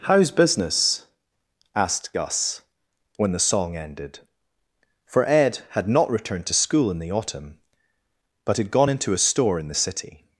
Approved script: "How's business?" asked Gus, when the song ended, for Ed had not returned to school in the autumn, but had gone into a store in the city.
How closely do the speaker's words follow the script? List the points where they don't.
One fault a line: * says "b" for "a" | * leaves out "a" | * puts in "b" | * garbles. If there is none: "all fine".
all fine